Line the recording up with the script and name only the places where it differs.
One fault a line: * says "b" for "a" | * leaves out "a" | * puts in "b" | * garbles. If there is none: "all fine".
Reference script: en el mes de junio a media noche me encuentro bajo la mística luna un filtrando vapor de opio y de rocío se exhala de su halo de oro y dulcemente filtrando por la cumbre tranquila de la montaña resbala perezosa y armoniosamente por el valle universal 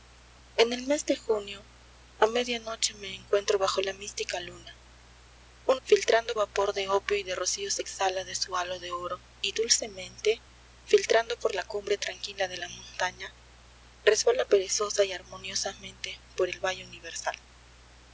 all fine